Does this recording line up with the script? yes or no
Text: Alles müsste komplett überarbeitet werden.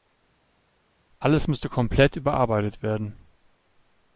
yes